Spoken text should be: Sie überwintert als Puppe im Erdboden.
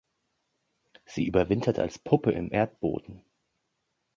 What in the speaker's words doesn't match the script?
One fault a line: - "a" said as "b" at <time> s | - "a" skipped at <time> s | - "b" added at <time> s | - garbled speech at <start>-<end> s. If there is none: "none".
none